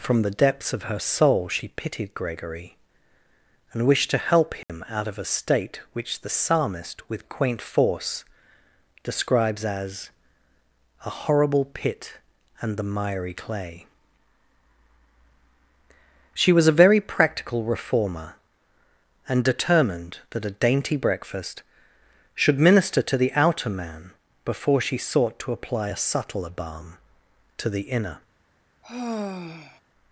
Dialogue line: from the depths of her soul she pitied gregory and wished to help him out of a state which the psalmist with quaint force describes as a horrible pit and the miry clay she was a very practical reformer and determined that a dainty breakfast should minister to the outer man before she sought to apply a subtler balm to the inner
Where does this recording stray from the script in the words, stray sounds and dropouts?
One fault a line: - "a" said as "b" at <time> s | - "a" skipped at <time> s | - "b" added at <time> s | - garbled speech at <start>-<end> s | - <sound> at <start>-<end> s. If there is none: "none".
- dropout at 4.6-4.7 s
- sigh at 28.8-29.8 s